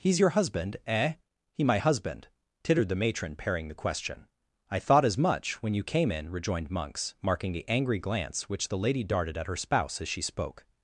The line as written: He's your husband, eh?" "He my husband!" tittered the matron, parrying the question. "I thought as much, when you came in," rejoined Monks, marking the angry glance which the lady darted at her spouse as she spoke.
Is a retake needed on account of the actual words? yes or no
no